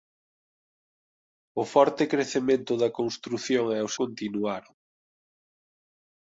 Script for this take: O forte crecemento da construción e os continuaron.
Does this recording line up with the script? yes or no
yes